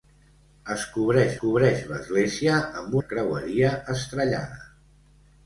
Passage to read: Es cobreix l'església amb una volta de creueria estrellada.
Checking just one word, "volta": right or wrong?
wrong